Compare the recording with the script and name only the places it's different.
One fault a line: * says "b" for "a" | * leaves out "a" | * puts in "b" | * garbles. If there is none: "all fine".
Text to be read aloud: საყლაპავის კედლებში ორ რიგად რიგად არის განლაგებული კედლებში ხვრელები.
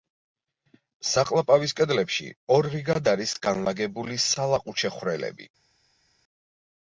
* leaves out "რიგად"
* says "სალაყუჩე" for "კედლებში"